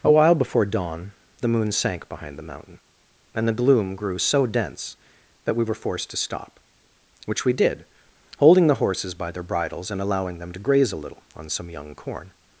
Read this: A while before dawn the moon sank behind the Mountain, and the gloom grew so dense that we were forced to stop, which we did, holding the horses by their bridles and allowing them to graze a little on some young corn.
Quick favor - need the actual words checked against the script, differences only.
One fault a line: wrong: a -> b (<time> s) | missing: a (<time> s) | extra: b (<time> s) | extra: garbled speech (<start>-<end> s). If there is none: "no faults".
no faults